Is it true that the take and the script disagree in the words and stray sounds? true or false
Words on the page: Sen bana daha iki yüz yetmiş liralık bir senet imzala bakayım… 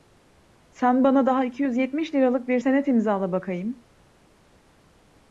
false